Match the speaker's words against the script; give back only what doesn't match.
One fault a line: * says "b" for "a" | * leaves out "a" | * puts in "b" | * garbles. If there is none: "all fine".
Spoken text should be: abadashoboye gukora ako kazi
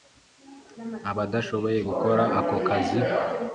all fine